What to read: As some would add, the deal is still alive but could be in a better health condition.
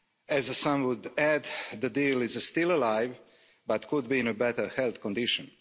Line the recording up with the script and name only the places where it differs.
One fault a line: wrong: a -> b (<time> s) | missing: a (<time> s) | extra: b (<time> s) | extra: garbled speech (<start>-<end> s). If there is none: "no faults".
no faults